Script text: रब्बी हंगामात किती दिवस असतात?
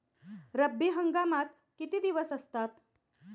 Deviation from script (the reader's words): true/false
false